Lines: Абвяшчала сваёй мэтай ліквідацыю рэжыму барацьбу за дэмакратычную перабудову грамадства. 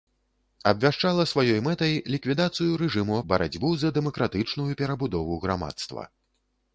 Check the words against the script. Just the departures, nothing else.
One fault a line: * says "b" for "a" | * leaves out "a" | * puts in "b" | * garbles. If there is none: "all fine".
all fine